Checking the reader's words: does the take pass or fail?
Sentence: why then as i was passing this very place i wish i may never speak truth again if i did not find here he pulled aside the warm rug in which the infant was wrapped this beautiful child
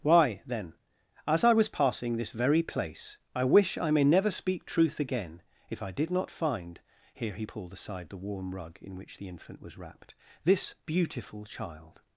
pass